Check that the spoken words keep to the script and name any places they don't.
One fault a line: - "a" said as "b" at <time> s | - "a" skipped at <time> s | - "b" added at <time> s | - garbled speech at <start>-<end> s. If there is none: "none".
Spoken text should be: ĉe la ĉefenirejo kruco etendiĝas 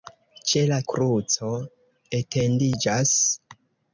- "ĉefenirejo" skipped at 0.8 s